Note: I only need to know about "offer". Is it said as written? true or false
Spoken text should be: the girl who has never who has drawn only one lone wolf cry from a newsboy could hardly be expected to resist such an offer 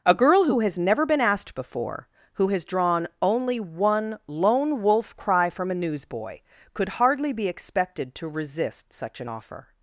true